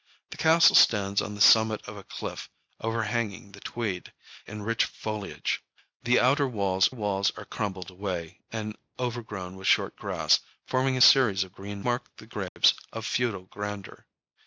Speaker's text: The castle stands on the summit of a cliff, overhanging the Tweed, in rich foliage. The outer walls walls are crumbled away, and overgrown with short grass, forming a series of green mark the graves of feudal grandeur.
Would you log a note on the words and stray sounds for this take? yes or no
yes